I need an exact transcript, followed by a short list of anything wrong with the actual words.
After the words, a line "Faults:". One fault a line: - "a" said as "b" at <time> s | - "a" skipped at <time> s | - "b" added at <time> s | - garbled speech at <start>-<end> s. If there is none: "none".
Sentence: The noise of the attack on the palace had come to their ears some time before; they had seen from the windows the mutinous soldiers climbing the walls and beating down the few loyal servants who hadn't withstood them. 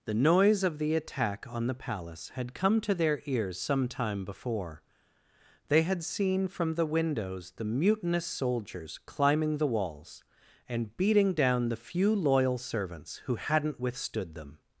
The noise of the attack on the palace had come to their ears some time before; they had seen from the windows the mutinous soldiers climbing the walls and beating down the few loyal servants who hadn't withstood them.
Faults:
none